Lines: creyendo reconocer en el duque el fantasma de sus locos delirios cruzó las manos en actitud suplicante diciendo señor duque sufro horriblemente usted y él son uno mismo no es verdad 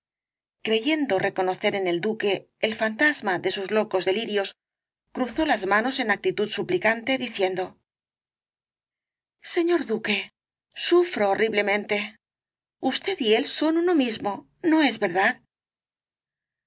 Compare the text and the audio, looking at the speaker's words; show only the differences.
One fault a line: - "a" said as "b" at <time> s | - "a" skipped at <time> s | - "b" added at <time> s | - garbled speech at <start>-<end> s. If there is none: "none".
none